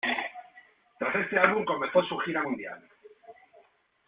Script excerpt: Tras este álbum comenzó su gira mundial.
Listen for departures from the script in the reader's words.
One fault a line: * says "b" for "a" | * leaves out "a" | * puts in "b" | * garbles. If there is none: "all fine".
all fine